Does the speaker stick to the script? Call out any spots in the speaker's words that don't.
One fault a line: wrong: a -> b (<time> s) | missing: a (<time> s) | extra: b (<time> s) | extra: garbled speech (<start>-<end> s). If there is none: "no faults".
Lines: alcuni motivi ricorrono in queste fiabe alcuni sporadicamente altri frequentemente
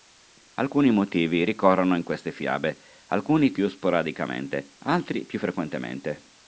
extra: più (3.5 s)
extra: più (5.3 s)